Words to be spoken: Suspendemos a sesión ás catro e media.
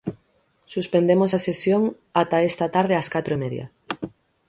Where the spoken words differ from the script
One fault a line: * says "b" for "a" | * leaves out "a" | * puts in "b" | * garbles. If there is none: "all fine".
* puts in "ata esta tarde"